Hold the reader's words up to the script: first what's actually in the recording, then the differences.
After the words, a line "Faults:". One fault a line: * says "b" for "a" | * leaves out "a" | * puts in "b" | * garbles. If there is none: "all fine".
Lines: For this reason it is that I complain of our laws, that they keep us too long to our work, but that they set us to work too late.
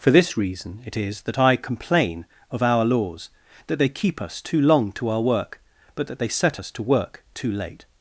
For this reason it is that I complain of our laws, that they keep us too long to our work, but that they set us to work too late.
Faults:
all fine